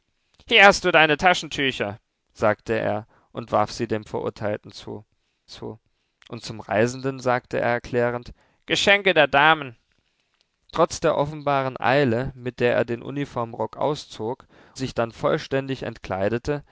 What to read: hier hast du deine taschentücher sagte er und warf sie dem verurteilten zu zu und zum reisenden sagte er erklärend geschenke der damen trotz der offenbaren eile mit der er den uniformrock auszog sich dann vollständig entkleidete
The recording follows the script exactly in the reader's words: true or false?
true